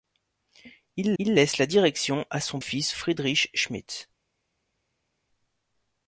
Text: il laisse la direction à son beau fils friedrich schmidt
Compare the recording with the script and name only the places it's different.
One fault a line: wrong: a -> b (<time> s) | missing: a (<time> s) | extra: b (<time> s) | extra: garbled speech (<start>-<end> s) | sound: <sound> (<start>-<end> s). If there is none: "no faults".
extra: il (1.2 s)
missing: beau (2.6 s)